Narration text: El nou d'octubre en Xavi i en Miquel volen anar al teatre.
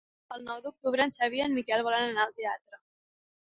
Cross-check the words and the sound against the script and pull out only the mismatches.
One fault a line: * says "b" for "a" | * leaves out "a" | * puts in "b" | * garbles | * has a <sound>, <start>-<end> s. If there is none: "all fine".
all fine